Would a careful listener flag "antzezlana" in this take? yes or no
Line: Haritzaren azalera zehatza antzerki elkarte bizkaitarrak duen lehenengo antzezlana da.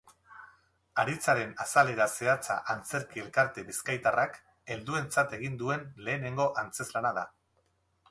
no